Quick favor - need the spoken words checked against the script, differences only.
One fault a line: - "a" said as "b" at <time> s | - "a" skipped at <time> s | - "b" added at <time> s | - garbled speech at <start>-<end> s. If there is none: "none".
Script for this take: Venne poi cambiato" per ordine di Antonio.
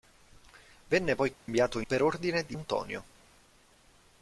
none